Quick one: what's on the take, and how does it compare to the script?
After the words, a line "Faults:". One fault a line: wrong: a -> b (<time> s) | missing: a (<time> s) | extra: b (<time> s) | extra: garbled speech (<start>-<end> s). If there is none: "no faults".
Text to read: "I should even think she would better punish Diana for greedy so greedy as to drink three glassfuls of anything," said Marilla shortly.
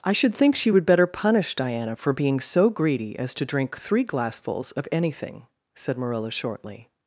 "I should think she would better punish Diana for being so greedy as to drink three glassfuls of anything," said Marilla shortly.
Faults:
missing: even (0.3 s)
wrong: greedy -> being (2.1 s)